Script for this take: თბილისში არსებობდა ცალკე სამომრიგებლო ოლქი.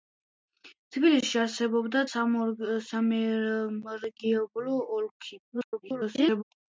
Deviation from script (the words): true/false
true